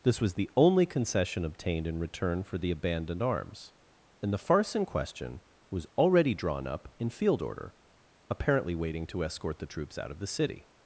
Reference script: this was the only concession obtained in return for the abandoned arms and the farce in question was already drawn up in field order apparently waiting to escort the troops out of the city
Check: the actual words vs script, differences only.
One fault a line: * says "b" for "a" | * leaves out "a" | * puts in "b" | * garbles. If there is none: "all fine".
all fine